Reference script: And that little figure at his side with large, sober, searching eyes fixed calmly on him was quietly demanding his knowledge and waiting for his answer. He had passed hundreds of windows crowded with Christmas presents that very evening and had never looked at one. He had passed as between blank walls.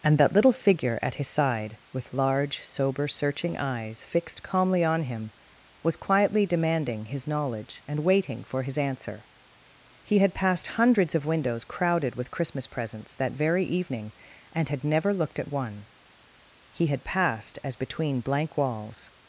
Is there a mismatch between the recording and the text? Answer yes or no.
no